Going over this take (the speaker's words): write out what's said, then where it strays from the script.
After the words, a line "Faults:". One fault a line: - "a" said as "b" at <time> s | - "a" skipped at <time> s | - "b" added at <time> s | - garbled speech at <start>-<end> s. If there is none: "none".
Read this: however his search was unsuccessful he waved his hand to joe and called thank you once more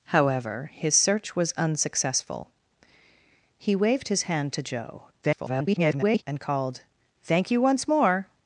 however his search was unsuccessful he waved his hand to joe [garbled] and called thank you once more
Faults:
- garbled speech at 5.2-6.2 s